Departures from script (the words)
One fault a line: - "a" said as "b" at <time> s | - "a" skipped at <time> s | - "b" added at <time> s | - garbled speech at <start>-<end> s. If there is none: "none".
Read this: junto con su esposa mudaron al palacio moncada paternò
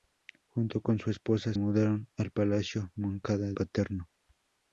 none